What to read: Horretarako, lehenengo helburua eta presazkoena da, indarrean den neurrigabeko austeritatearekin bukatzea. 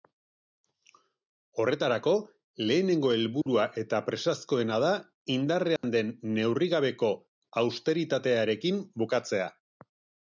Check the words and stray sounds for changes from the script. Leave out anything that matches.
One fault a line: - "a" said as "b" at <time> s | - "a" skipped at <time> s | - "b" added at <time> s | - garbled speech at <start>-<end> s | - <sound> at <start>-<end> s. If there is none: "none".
- dropout at 3.4-3.5 s
- dropout at 5.8-5.8 s